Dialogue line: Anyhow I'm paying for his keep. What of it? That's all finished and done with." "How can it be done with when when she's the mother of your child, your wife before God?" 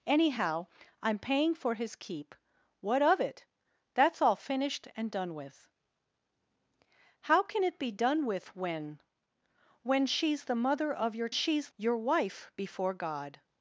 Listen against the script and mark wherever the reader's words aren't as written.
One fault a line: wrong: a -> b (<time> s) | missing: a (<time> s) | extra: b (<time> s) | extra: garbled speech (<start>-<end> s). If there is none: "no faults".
wrong: child -> she's (11.3 s)